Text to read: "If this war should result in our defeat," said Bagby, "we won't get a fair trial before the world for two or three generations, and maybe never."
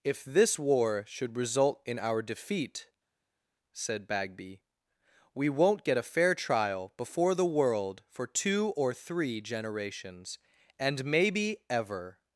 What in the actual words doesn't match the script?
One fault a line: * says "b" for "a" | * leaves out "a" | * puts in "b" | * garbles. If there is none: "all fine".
* says "ever" for "never"